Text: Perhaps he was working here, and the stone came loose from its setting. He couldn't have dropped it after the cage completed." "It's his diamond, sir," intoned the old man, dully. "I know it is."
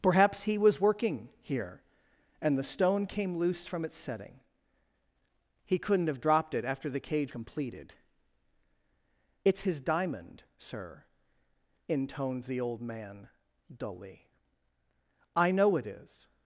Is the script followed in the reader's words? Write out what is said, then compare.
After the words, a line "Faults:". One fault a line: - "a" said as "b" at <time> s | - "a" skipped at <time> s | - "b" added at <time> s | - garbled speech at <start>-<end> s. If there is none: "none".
Perhaps he was working here, and the stone came loose from its setting. He couldn't have dropped it after the cage completed." "It's his diamond, sir," intoned the old man, dully. "I know it is."
Faults:
none